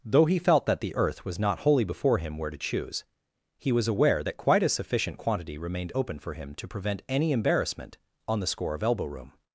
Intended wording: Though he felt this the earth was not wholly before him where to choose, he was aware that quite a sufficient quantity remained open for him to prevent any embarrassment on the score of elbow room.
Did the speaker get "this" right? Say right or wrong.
wrong